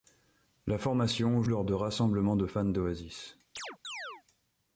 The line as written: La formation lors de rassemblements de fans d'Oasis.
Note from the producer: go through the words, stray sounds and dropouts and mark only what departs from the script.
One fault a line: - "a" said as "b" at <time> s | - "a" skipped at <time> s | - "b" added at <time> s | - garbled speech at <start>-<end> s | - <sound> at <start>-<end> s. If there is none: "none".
- chirp at 3.6-4.2 s